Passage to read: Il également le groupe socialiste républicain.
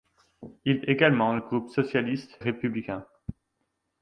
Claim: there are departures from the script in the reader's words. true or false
false